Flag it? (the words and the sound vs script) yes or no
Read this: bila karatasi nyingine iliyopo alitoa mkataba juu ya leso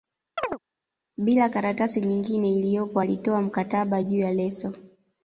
yes